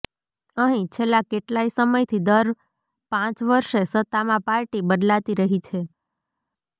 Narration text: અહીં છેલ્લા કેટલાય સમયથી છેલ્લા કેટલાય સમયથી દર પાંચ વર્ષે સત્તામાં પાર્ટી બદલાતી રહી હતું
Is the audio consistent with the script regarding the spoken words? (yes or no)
no